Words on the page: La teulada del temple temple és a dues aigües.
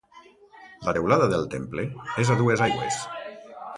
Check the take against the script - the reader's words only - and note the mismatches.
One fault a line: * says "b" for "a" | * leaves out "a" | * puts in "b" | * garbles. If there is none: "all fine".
* leaves out "temple"